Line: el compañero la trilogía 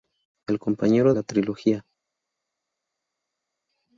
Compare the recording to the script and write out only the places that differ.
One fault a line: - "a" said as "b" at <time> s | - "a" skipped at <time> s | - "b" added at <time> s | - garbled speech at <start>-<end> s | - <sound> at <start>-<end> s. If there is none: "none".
none